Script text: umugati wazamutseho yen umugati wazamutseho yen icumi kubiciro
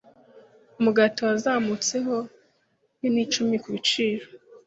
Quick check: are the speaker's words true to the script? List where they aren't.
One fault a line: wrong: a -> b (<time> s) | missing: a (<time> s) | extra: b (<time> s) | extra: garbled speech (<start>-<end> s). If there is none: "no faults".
missing: umugati wazamutseho yen (3.1 s)